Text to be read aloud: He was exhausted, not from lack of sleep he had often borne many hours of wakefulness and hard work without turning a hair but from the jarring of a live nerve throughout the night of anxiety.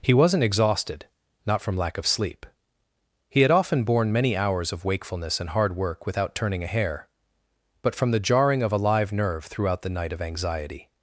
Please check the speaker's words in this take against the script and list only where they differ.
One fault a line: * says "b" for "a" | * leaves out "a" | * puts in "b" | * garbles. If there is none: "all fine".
* says "wasn't" for "was"